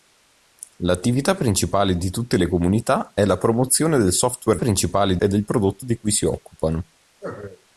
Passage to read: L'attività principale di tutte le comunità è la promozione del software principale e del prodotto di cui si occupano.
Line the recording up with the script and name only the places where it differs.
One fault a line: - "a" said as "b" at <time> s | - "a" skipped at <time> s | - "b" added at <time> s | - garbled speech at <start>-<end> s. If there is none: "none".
none